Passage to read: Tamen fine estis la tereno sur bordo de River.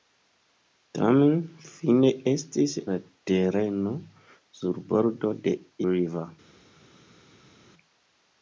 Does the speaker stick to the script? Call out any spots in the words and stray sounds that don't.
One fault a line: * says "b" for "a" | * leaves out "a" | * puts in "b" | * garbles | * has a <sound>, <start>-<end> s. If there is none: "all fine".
all fine